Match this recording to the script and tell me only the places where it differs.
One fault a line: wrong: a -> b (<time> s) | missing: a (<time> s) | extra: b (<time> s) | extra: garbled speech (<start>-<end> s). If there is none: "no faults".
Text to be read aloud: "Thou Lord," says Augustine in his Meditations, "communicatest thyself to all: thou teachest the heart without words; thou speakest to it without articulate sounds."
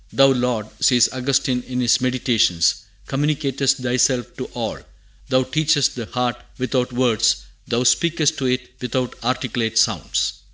no faults